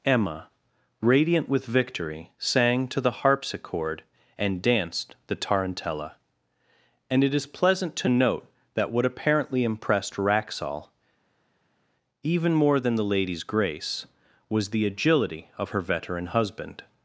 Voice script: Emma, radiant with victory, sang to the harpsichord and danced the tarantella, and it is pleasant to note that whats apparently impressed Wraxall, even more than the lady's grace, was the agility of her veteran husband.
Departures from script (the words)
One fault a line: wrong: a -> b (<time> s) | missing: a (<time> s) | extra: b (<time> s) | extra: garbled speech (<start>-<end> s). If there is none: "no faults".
wrong: whats -> what (8.9 s)